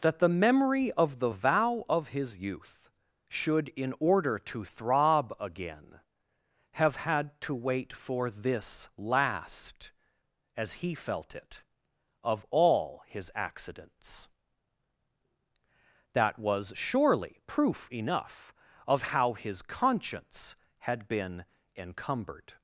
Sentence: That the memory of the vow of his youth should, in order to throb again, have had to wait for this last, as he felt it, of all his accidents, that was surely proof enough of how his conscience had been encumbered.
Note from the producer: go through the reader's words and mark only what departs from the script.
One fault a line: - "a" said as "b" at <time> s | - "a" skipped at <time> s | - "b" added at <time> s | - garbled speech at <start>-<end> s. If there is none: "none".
none